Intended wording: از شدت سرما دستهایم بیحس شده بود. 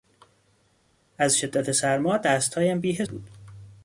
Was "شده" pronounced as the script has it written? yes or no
no